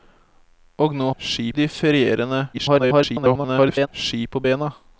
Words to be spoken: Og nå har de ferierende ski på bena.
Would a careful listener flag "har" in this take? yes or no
yes